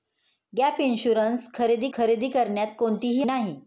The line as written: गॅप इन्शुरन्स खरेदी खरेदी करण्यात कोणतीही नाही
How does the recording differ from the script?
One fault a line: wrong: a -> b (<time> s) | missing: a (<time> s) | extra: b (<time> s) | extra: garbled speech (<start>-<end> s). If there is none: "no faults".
no faults